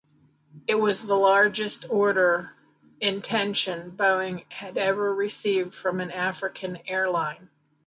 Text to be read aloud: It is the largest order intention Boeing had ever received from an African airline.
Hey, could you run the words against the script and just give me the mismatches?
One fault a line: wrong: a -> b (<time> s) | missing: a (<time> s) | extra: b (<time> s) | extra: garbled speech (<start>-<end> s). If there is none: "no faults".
wrong: is -> was (0.8 s)